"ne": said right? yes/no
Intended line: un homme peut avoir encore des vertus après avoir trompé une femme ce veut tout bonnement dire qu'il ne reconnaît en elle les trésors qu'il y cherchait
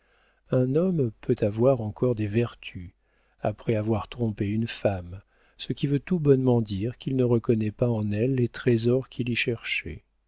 yes